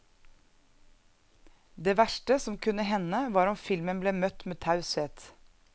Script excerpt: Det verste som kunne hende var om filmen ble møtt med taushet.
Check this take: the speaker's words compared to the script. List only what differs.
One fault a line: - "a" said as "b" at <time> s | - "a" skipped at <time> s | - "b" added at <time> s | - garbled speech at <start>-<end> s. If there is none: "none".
none